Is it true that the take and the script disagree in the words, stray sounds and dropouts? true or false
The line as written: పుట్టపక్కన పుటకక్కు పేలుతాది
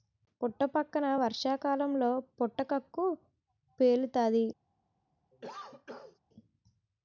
true